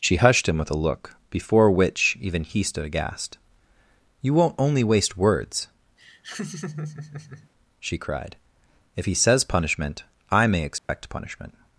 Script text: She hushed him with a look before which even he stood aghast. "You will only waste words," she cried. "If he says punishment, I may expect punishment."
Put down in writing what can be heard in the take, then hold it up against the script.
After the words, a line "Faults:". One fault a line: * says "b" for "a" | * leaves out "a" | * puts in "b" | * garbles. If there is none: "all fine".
She hushed him with a look before which even he stood aghast. "You won't only waste words," she cried. "If he says punishment, I may expect punishment."
Faults:
* says "won't" for "will"